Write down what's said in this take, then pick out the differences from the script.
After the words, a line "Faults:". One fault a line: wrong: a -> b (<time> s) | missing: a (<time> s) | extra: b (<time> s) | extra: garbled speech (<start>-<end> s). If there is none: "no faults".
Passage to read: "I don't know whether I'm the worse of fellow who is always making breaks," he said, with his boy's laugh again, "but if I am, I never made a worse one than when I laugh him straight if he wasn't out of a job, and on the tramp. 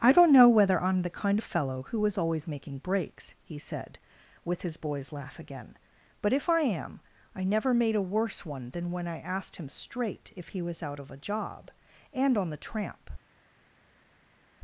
"I don't know whether I'm the kind of fellow who is always making breaks," he said, with his boy's laugh again, "but if I am, I never made a worse one than when I asked him straight if he was out of a job, and on the tramp.
Faults:
wrong: worse -> kind (1.1 s)
wrong: laugh -> asked (9.2 s)
wrong: wasn't -> was (10.6 s)